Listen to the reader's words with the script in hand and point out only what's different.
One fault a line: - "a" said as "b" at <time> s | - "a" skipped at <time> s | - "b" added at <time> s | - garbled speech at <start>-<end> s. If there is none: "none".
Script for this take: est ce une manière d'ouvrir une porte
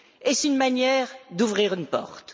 none